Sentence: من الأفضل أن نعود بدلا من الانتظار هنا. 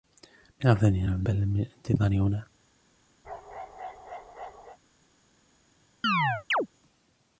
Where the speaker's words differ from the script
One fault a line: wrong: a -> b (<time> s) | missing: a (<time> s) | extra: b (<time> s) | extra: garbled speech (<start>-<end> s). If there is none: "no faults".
no faults